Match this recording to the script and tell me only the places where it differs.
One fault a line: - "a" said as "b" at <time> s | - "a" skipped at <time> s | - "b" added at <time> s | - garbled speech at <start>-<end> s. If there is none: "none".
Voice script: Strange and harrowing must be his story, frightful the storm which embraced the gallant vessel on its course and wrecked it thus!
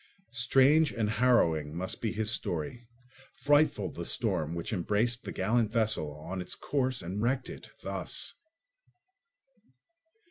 none